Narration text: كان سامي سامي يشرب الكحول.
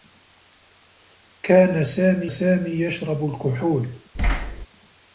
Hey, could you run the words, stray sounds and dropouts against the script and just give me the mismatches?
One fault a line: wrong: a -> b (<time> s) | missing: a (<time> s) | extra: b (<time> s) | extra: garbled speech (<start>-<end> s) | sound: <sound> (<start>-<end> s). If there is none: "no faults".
sound: thud (4.1-4.7 s)